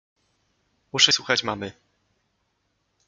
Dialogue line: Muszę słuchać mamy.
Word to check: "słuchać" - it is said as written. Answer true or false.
true